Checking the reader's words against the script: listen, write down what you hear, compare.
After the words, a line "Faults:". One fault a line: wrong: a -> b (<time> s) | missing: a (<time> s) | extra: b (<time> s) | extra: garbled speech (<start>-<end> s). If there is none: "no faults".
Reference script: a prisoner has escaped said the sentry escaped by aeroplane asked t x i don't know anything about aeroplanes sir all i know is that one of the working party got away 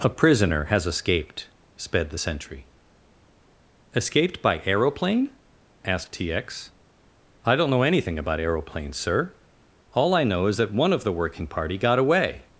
a prisoner has escaped sped the sentry escaped by aeroplane asked t x i don't know anything about aeroplanes sir all i know is that one of the working party got away
Faults:
wrong: said -> sped (1.8 s)